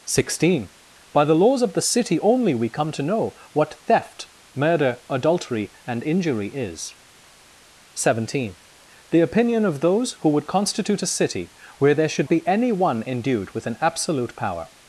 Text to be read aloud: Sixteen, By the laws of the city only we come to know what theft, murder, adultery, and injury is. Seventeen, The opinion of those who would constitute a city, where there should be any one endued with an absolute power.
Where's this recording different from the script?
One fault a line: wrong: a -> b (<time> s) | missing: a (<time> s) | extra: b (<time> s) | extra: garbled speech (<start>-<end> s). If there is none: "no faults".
no faults